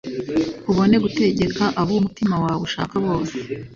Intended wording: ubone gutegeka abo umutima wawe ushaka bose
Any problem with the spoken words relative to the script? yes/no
no